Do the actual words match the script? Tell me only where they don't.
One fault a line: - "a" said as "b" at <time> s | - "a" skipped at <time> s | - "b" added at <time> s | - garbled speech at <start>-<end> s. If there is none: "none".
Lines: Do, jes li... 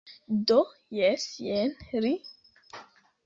- "jen" added at 1.5 s